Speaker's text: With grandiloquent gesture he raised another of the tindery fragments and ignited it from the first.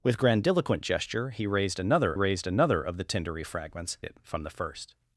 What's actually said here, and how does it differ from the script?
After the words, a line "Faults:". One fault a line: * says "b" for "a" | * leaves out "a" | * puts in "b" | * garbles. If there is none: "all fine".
With grandiloquent gesture he raised another raised another of the tindery fragments it from the first.
Faults:
* puts in "raised another"
* leaves out "and ignited"